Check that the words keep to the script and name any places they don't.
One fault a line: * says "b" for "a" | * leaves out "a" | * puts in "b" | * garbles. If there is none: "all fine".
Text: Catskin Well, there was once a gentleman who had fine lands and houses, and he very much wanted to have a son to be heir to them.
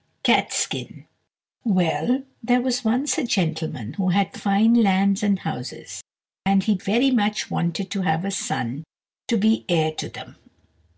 all fine